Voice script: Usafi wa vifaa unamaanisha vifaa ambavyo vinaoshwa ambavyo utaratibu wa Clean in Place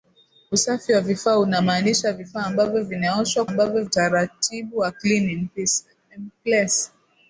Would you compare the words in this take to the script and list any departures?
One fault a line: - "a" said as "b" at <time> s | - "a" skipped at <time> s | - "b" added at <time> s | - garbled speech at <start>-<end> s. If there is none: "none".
none